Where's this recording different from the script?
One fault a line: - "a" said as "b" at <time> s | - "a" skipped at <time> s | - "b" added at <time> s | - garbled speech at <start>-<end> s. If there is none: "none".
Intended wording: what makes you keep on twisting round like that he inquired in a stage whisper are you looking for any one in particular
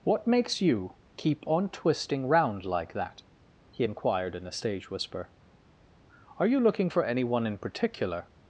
none